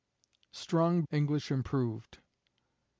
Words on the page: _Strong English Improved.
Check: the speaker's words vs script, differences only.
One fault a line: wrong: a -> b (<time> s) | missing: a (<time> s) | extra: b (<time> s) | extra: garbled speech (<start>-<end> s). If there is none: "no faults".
no faults